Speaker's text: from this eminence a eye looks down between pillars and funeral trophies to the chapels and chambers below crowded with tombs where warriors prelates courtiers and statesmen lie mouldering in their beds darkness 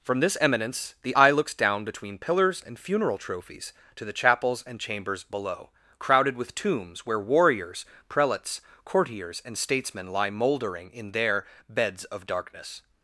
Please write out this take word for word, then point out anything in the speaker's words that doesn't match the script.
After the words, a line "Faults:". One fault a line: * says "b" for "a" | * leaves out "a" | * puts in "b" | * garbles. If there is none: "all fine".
from this eminence the eye looks down between pillars and funeral trophies to the chapels and chambers below crowded with tombs where warriors prelates courtiers and statesmen lie mouldering in their beds of darkness
Faults:
* says "the" for "a"
* puts in "of"